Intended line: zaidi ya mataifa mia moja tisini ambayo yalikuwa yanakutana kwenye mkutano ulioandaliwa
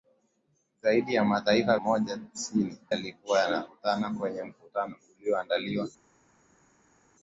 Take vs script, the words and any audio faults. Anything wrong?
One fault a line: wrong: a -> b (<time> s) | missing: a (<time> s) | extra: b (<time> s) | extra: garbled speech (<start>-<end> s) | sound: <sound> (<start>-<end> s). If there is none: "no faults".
missing: mia (1.8 s)
missing: ambayo (2.8 s)